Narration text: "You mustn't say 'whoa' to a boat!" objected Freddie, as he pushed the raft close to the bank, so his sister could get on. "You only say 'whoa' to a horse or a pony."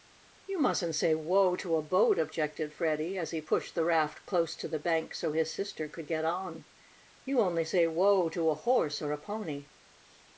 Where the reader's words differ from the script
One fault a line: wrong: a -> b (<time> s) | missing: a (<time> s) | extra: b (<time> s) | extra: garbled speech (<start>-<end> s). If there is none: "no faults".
no faults